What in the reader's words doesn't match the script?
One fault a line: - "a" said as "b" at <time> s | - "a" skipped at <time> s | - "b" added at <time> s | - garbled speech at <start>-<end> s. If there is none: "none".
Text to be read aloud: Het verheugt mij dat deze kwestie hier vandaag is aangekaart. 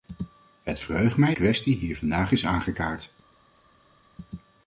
- "dat deze" skipped at 1.4 s